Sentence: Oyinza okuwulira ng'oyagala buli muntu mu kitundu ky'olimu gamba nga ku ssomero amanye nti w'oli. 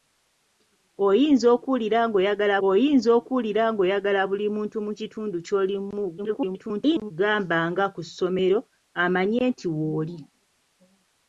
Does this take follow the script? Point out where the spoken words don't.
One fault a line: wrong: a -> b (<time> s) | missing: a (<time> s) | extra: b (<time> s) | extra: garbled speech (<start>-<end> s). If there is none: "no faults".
extra: oyinza okuwulira ng'oyagala (2.7 s)
extra: garbled speech (6.2-7.1 s)